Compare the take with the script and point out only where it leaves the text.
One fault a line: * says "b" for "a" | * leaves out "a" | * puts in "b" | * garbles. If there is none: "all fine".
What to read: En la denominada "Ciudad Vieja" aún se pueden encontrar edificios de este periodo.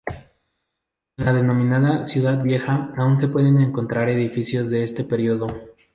all fine